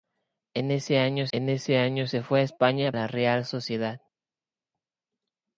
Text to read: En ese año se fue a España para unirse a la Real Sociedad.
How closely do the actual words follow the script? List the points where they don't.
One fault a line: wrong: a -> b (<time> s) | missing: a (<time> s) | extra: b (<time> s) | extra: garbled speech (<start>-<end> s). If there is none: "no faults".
extra: en ese año (1.3 s)
missing: para unirse a (2.9 s)